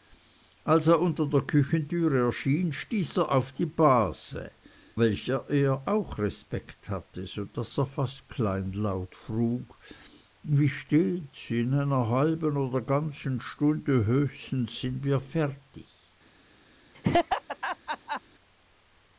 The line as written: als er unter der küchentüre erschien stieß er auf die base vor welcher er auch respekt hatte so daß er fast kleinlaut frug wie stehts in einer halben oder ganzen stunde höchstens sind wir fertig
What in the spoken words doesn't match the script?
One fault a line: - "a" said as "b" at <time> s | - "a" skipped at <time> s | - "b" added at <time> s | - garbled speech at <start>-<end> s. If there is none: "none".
- "vor" skipped at 4.5 s